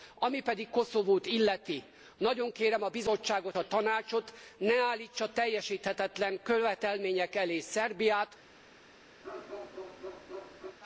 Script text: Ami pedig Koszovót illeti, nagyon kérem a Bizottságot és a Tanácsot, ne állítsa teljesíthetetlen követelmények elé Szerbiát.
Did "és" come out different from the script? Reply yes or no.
yes